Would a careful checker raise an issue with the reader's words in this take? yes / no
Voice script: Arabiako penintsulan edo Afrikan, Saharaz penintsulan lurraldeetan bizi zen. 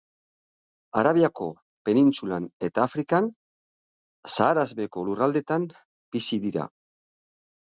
yes